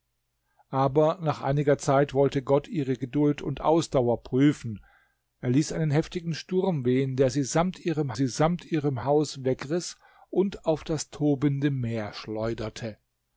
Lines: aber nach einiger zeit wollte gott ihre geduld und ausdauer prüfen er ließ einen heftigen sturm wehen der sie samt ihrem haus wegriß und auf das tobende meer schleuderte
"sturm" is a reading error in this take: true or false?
false